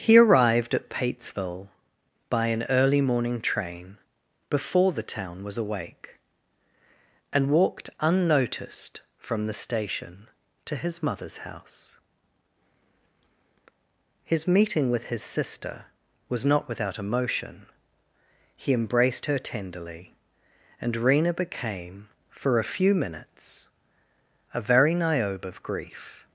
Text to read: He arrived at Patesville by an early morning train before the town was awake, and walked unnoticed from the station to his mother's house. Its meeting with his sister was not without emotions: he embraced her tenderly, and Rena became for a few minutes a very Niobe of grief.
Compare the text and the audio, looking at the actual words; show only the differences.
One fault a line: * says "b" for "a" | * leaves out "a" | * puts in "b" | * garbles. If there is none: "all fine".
* says "His" for "Its"
* says "emotion" for "emotions"